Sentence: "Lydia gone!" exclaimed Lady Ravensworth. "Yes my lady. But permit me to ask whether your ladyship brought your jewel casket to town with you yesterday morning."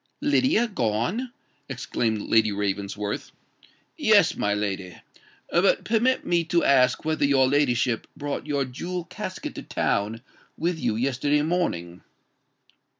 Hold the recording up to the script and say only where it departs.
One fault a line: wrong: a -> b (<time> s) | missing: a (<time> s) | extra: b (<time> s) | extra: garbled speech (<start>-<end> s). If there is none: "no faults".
no faults